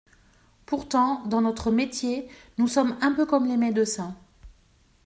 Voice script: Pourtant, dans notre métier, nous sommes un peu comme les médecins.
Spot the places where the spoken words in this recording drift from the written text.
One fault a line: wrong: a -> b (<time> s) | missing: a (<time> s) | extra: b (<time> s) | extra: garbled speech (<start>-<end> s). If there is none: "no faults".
no faults